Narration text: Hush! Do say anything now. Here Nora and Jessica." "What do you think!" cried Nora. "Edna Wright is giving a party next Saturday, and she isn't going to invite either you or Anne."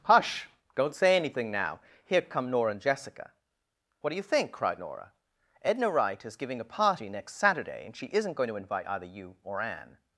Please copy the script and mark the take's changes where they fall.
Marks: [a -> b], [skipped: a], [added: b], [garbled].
Hush! [Do -> Don't] say anything now. Here [added: come] Nora and Jessica." "What do you think!" cried Nora. "Edna Wright is giving a party next Saturday, and she isn't going to invite either you or Anne."